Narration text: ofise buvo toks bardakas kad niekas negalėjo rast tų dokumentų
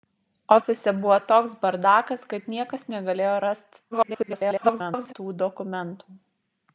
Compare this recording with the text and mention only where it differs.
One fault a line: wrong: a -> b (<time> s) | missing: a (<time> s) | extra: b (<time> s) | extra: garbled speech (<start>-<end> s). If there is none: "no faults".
extra: garbled speech (3.9-5.1 s)